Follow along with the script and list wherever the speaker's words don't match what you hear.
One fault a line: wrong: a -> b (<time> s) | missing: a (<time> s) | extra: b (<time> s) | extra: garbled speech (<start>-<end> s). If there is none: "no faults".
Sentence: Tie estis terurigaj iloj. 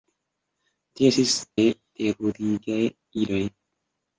no faults